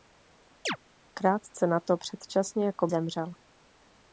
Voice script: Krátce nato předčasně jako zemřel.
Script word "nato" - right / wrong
right